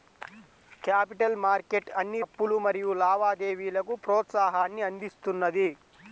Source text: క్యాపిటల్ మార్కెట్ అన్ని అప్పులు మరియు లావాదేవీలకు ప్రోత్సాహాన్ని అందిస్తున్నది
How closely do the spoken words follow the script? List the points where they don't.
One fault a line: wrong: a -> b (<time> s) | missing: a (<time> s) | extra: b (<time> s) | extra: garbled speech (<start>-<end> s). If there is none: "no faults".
no faults